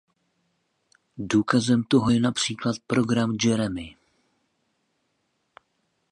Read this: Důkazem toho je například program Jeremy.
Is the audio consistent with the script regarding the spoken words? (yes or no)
yes